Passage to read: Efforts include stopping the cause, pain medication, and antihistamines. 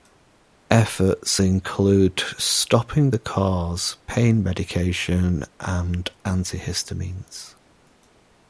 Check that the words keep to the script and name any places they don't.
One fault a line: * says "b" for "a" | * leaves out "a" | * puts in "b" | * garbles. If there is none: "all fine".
all fine